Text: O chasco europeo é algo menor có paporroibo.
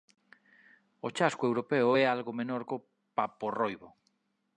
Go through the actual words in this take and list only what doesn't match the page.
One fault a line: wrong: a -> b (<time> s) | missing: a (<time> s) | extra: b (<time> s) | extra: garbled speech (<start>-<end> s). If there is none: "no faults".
no faults